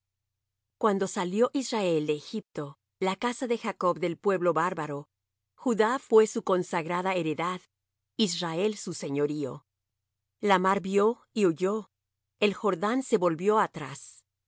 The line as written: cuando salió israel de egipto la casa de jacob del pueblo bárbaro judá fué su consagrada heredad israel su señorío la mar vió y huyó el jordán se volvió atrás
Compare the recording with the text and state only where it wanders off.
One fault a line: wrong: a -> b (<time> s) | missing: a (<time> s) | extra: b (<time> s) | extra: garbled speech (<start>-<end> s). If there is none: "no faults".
no faults